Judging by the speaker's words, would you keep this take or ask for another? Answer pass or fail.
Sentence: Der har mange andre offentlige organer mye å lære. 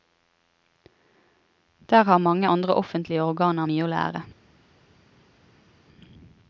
pass